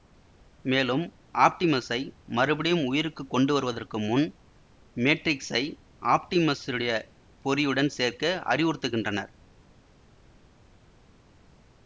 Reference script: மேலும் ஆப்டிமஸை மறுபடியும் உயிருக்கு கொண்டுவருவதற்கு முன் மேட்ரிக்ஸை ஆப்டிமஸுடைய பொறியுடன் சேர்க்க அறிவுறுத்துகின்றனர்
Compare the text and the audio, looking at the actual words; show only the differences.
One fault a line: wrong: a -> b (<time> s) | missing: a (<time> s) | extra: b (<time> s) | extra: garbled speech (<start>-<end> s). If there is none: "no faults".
no faults